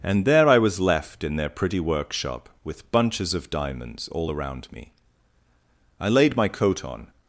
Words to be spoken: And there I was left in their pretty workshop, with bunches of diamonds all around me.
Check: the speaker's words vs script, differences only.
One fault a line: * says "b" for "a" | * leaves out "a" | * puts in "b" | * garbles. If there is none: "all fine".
* puts in "I laid my coat on"